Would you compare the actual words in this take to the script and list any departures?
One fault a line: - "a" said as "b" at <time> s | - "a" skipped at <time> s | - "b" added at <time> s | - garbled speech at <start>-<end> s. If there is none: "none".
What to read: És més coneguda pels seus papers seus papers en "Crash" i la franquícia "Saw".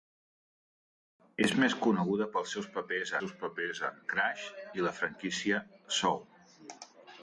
none